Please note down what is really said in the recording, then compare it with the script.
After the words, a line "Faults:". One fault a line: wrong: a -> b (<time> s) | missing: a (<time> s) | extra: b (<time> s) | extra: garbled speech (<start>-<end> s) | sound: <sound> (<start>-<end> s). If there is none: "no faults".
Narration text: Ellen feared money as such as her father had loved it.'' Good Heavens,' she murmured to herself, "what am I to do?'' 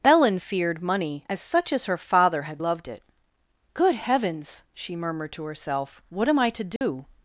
Ellen feared money as such as her father had loved it.'' Good Heavens,' she murmured to herself, "what am I to do?''
Faults:
sound: dropout (6.8-6.8 s)